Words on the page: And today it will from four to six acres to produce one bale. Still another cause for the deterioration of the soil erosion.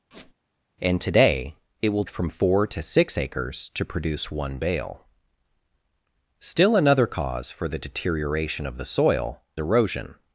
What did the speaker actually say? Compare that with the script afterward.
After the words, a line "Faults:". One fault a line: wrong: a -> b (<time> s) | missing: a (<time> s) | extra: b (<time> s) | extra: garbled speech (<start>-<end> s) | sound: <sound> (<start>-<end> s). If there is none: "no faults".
And today it will from four to six acres to produce one bale. Still another cause for the deterioration of the soil erosion.
Faults:
sound: squeak (0.1-0.3 s)